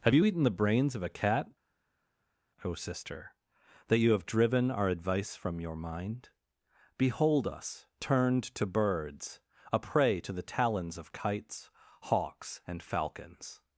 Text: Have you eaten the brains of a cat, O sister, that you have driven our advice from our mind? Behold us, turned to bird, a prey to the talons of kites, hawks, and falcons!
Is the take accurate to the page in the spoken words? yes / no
no